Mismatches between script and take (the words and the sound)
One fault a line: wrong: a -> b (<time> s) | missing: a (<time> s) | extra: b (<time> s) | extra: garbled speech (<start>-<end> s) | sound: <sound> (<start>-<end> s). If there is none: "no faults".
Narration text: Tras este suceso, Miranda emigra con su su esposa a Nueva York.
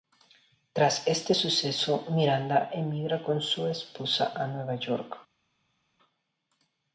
missing: su (3.7 s)